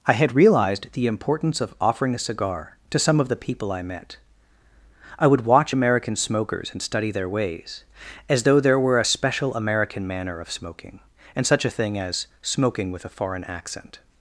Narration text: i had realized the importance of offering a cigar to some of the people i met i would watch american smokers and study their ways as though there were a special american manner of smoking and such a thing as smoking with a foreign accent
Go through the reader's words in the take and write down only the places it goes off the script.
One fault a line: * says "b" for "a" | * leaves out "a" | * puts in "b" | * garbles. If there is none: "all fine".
all fine